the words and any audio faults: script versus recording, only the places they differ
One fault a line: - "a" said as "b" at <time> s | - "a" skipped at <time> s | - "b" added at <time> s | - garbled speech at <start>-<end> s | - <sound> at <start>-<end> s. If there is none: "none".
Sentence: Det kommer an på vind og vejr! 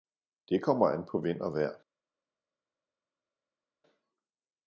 none